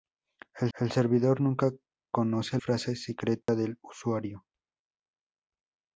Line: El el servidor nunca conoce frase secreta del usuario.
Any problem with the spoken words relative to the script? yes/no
no